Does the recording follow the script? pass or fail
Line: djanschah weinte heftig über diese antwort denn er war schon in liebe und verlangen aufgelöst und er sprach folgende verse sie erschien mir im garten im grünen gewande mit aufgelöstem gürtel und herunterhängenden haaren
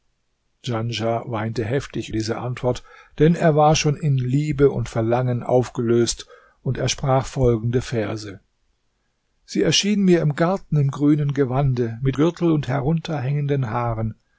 fail